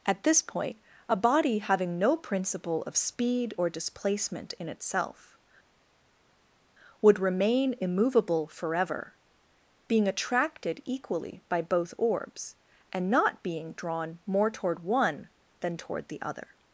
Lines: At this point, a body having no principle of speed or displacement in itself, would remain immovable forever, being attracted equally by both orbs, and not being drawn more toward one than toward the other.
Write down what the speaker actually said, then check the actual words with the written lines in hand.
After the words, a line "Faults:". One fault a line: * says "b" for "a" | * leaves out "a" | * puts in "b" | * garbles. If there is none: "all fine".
At this point, a body having no principle of speed or displacement in itself, would remain immovable forever, being attracted equally by both orbs, and not being drawn more toward one than toward the other.
Faults:
all fine